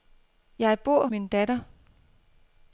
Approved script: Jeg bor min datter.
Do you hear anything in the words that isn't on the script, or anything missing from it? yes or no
no